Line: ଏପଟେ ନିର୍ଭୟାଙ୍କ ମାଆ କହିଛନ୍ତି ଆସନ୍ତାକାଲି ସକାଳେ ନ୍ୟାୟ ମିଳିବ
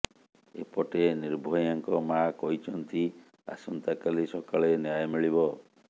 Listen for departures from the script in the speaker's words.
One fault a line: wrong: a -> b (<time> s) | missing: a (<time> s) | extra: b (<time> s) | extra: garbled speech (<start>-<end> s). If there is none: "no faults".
no faults